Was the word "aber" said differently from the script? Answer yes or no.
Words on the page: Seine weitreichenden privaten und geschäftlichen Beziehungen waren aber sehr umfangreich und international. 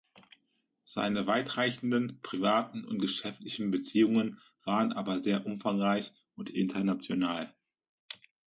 no